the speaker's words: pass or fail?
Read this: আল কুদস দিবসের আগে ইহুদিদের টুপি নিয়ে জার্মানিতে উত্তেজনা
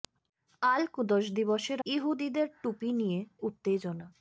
fail